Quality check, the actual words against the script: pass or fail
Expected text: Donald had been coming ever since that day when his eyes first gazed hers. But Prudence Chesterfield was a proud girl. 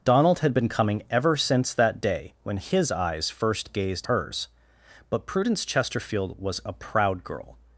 pass